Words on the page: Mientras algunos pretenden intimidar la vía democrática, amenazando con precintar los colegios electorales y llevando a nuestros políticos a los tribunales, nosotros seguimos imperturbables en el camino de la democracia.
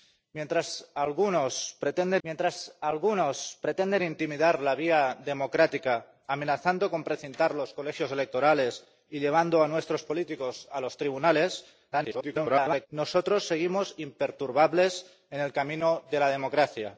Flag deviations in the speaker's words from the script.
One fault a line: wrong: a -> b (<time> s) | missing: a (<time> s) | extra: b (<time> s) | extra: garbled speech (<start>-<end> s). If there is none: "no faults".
extra: mientras algunos pretenden (2.2 s)
extra: garbled speech (11.9-12.9 s)